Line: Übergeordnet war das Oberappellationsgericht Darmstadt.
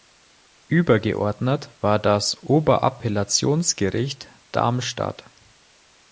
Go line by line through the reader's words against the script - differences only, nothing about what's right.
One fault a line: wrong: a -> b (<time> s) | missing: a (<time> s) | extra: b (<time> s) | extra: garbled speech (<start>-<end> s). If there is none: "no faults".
no faults